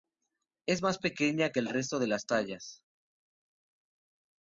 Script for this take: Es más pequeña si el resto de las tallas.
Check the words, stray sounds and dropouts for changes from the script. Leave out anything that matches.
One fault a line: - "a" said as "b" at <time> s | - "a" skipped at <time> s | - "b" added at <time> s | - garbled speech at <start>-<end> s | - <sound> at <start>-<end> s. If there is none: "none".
- "si" said as "que" at 1.5 s